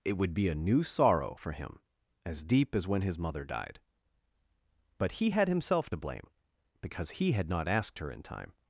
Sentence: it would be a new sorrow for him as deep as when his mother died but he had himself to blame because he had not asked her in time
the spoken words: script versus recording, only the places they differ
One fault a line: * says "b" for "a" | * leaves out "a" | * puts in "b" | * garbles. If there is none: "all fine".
all fine